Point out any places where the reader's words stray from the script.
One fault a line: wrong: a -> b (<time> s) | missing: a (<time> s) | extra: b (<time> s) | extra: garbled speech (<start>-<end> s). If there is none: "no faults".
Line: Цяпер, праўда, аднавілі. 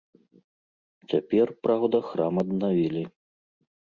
extra: храм (2.1 s)